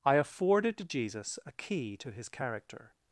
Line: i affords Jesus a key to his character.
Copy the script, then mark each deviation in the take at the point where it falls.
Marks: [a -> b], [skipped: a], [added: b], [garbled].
i [affords -> afforded] Jesus a key to his character.